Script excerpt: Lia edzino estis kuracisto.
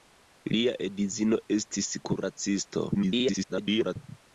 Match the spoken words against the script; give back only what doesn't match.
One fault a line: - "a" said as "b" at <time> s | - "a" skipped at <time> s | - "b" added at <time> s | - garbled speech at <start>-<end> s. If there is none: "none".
- garbled speech at 2.9-4.0 s